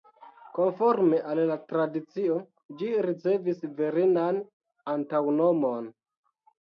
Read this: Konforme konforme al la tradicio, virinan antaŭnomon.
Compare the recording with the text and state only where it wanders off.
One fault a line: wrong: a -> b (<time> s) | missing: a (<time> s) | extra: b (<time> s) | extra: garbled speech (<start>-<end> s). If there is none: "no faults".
missing: konforme (1.2 s)
extra: ĝi ricevis (2.8 s)